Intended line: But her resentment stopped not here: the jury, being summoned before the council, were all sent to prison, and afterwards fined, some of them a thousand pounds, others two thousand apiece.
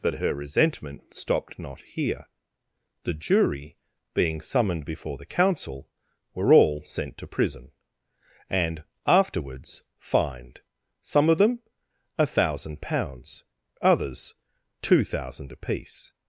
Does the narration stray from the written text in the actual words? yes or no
no